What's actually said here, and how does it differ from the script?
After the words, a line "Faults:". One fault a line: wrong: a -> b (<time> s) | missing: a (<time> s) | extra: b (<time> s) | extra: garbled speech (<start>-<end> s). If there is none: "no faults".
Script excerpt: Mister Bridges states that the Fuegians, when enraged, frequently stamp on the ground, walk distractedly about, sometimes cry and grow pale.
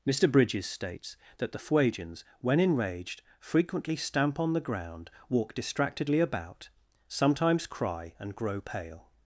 Mister Bridges states that the Fuegians, when enraged, frequently stamp on the ground, walk distractedly about, sometimes cry and grow pale.
Faults:
no faults